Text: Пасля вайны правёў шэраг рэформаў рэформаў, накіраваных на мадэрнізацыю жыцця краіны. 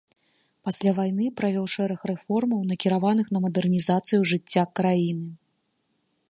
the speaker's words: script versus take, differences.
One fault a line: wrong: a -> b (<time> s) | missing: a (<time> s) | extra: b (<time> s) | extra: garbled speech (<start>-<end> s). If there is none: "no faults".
missing: рэформаў (2.6 s)